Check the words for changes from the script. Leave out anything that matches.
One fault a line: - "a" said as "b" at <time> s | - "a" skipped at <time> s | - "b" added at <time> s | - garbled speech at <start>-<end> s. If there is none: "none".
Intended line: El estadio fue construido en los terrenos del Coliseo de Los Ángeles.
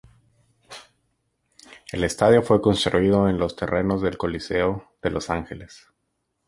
none